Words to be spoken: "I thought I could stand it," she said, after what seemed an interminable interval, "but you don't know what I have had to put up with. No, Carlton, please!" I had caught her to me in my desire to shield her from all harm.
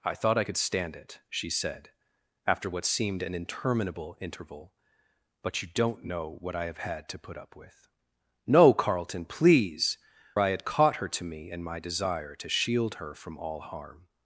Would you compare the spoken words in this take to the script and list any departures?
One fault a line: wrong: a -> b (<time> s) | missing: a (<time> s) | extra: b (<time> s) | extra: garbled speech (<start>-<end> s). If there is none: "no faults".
no faults